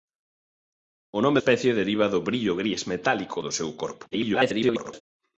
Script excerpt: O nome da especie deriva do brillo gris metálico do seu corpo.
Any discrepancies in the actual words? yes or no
yes